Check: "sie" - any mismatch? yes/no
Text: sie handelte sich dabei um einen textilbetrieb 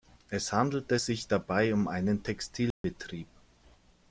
yes